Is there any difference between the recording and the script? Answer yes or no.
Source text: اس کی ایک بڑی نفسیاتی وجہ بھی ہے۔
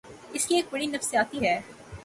yes